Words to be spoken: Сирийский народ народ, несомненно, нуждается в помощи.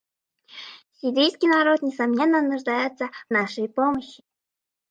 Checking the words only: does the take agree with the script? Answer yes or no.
no